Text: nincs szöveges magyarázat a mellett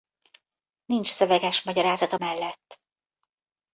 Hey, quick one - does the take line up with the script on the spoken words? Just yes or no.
yes